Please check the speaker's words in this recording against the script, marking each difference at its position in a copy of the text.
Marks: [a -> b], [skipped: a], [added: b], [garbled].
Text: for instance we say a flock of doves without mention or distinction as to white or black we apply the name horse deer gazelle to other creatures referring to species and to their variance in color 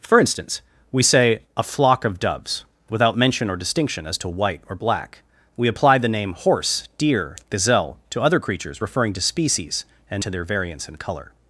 for instance we say a flock of doves without mention or distinction as to white or black we apply the name horse deer gazelle to other creatures referring to species and to their variance in color